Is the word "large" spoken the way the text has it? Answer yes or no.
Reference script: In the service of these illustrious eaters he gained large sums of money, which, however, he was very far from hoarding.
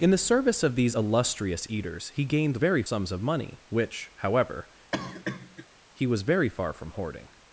no